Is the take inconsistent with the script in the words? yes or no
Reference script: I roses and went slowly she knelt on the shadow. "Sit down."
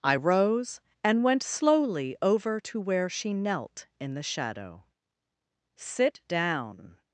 yes